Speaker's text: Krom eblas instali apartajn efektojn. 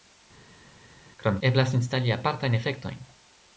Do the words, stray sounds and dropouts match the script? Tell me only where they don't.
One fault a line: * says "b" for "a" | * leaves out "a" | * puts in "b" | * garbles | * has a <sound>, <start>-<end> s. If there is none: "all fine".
all fine